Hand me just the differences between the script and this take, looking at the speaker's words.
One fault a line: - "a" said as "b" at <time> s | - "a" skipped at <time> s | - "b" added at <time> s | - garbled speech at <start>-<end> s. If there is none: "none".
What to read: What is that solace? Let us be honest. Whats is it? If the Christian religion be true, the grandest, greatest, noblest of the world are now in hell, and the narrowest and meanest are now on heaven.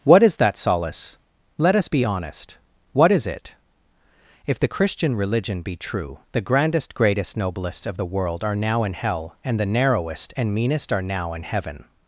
- "Whats" said as "What" at 2.9 s
- "on" said as "in" at 11.3 s